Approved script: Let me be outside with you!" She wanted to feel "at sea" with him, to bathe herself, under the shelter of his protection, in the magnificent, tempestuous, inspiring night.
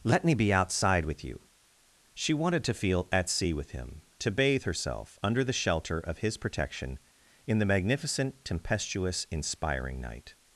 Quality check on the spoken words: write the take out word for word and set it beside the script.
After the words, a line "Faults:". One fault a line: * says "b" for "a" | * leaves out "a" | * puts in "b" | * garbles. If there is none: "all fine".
Let me be outside with you!" She wanted to feel "at sea" with him, to bathe herself, under the shelter of his protection, in the magnificent, tempestuous, inspiring night.
Faults:
all fine